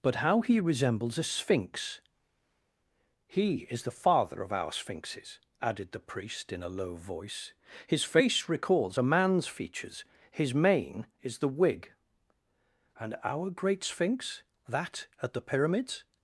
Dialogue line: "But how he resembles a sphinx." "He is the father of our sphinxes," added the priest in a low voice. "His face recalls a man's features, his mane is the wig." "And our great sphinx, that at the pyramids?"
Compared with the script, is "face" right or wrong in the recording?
right